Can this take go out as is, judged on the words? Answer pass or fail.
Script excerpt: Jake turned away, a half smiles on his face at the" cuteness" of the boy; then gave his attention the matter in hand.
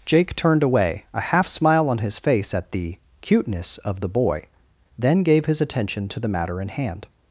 fail